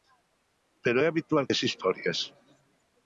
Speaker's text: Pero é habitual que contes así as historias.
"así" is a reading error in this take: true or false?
true